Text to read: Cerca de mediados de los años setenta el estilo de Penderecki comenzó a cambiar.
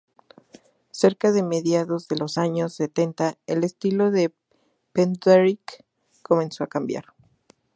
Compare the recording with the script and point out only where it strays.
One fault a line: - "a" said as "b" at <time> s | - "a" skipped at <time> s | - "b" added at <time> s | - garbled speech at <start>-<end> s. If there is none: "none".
none